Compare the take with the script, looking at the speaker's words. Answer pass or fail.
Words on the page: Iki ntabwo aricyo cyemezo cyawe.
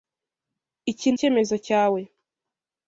fail